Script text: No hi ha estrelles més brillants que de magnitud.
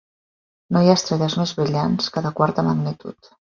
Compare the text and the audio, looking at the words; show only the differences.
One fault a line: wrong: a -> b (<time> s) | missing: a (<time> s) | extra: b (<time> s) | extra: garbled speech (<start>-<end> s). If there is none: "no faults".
extra: quarta (2.4 s)